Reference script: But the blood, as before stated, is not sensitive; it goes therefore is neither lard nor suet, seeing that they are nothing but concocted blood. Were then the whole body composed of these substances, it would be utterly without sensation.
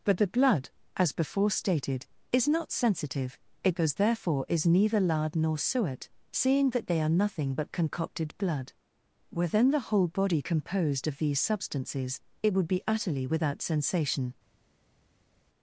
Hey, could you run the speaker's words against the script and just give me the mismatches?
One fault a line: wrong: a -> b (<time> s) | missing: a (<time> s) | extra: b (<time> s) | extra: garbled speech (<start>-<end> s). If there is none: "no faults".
no faults